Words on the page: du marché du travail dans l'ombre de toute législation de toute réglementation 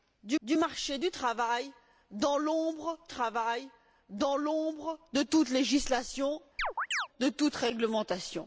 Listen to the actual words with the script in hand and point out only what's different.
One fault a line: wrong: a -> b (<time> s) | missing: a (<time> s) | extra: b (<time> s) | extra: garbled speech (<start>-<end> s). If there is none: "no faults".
extra: du (0.4 s)
extra: travail dans l'ombre (3.1 s)